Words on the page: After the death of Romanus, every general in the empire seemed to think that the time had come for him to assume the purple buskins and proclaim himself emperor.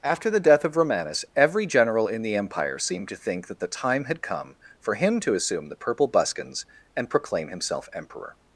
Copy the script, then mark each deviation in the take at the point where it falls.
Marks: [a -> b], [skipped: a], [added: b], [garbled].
After the death of Romanus, every general in the empire seemed to think that the time had come for him to assume the purple buskins and proclaim himself emperor.